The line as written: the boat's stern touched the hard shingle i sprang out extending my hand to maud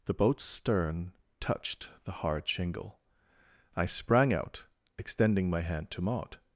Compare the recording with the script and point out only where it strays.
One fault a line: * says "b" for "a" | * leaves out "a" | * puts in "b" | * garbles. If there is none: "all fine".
all fine